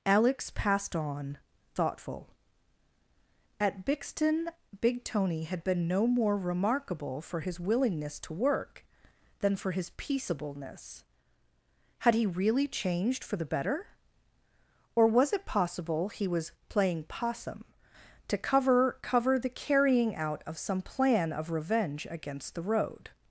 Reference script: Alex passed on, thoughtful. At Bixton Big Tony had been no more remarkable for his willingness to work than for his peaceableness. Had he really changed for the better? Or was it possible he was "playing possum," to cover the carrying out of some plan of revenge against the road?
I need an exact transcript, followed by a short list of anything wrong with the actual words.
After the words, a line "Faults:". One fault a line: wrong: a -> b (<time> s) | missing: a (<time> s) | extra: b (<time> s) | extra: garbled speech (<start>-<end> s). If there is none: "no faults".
Alex passed on, thoughtful. At Bixton Big Tony had been no more remarkable for his willingness to work than for his peaceableness. Had he really changed for the better? Or was it possible he was "playing possum," to cover cover the carrying out of some plan of revenge against the road?
Faults:
extra: cover (19.0 s)